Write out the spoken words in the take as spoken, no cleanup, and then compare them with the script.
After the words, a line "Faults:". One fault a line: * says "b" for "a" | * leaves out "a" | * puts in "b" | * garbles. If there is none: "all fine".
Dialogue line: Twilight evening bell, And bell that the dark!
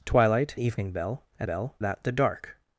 Twilight evening bell, And bell that the dark!
Faults:
all fine